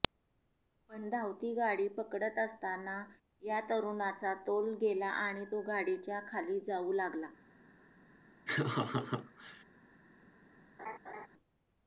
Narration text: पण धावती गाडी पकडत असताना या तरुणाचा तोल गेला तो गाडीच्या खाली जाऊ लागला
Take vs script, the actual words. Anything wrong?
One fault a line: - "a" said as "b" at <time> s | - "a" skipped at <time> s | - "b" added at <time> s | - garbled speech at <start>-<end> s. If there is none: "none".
- "आणि" added at 5.2 s